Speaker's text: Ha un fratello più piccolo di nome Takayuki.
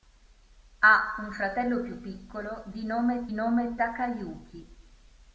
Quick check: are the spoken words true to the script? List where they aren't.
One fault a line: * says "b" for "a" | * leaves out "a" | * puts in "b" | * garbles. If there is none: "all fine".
* puts in "nome"